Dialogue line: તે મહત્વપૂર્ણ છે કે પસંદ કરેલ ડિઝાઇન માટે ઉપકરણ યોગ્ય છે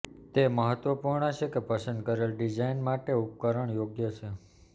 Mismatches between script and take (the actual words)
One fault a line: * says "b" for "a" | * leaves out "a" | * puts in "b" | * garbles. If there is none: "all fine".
all fine